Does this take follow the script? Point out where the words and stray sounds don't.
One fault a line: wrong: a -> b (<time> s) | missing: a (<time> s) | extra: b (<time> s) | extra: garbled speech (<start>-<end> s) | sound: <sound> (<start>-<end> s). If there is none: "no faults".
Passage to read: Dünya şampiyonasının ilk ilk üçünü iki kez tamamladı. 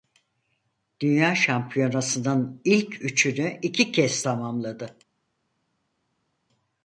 missing: ilk (3.0 s)